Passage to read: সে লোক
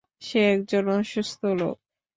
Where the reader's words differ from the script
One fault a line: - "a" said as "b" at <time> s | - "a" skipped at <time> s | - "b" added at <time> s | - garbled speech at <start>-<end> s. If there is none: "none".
- "একজন অসুস্থ" added at 0.5 s